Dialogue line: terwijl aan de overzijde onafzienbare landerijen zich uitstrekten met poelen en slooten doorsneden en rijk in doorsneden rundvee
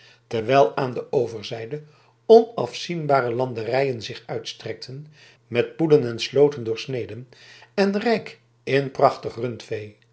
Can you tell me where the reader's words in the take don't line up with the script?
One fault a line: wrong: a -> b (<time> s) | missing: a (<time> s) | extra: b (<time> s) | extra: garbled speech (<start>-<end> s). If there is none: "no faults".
wrong: doorsneden -> prachtig (8.9 s)